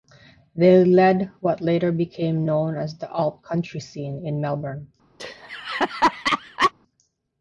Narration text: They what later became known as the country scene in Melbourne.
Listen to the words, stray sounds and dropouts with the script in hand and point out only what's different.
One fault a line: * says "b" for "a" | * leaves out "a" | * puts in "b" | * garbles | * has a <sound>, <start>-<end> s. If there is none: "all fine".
* puts in "led"
* puts in "alt"
* has a laugh, 5.2-6.7 s